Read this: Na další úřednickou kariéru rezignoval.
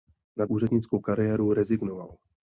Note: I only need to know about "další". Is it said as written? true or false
false